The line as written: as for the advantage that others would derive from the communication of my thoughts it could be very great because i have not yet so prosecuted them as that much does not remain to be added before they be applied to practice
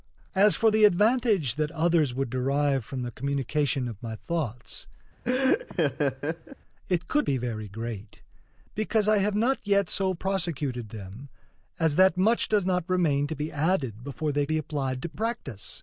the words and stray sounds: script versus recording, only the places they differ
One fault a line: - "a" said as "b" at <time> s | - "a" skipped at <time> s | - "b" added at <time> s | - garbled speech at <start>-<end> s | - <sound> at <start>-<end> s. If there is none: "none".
- laugh at 5.2-6.6 s